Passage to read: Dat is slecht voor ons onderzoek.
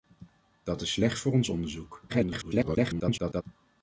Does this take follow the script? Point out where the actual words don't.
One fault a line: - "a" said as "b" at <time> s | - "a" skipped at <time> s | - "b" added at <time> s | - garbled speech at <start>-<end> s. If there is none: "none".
- garbled speech at 2.1-3.4 s